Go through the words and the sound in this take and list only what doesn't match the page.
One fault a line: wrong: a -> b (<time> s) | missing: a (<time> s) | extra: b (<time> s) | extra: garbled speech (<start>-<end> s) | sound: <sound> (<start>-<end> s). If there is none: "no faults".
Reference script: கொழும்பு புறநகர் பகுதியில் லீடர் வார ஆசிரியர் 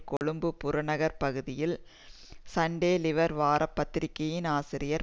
sound: dropout (0.2-0.2 s)
extra: சண்டே (2.5 s)
extra: பத்திரிகையின் (3.7 s)